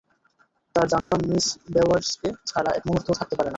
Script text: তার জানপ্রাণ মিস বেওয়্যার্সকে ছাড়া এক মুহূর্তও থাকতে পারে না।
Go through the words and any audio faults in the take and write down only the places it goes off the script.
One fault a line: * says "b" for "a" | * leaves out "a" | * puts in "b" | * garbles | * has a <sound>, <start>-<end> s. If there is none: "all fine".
* has a dropout, 1.0-1.1 s